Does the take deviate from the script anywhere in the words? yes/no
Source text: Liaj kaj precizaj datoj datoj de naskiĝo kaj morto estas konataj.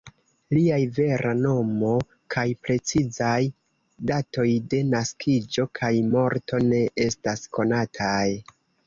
yes